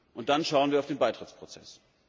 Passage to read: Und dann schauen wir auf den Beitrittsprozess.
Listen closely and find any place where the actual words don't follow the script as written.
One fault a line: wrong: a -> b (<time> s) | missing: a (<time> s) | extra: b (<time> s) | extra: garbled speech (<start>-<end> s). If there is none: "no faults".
no faults